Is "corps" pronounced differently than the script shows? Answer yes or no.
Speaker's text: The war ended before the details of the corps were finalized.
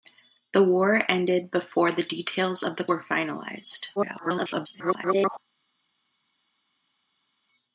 yes